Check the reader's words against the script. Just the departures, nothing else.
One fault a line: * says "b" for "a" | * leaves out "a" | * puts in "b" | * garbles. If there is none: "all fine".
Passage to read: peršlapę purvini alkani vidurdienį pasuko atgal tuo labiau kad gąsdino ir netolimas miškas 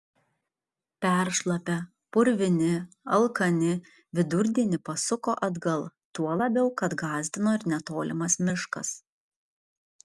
all fine